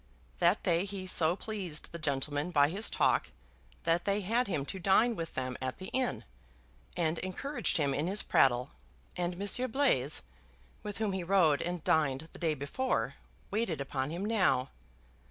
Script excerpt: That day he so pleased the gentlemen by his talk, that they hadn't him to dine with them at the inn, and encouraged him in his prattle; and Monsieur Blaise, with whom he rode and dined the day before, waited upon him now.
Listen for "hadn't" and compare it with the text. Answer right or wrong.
wrong